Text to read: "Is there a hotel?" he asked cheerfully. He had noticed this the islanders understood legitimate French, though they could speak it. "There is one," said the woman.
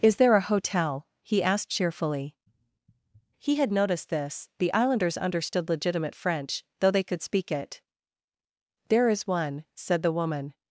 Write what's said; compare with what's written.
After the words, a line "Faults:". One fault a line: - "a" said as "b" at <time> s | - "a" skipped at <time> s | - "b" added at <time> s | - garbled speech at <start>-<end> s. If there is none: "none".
"Is there a hotel?" he asked cheerfully. He had noticed this the islanders understood legitimate French, though they could speak it. "There is one," said the woman.
Faults:
none